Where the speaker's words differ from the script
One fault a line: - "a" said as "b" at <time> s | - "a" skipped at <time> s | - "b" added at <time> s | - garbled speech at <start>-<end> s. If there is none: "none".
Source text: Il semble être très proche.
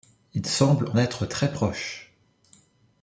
none